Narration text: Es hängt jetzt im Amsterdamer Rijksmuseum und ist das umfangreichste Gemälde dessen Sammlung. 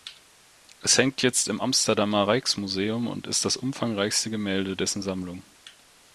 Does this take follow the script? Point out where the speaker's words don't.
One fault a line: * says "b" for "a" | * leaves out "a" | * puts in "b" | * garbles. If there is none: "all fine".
all fine